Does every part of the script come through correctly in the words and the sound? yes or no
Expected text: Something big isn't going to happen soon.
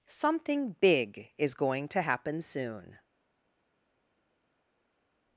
no